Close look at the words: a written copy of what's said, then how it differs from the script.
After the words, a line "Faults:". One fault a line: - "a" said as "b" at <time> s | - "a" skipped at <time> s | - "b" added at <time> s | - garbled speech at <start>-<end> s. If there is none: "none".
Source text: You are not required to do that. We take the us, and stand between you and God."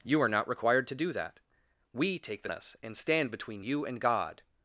You are not required to do that. We take the us, and stand between you and God."
Faults:
none